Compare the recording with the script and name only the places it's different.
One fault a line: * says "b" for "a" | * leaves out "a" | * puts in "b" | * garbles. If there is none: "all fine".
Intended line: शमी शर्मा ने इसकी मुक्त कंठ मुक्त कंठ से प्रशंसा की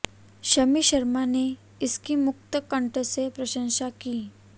* leaves out "मुक्त कंठ"